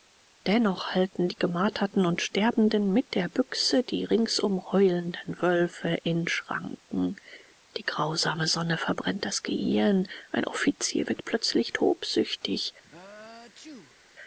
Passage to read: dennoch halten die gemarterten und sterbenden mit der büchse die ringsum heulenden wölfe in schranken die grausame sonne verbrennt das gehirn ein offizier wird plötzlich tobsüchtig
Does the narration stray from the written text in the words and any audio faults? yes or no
yes